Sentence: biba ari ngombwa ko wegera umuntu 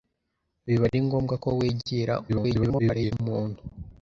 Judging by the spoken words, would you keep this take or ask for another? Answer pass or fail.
fail